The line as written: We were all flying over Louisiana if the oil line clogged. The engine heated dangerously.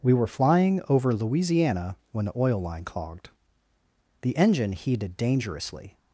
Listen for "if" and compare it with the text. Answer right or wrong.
wrong